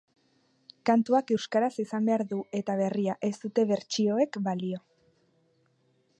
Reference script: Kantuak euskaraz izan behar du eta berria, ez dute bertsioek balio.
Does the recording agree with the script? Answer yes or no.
yes